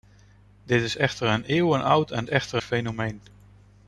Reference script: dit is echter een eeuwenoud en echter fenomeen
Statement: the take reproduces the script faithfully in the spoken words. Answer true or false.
true